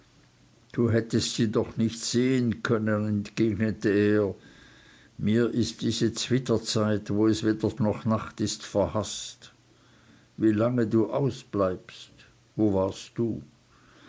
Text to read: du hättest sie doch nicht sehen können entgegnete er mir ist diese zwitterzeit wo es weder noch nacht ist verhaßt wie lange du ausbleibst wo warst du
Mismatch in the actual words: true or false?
false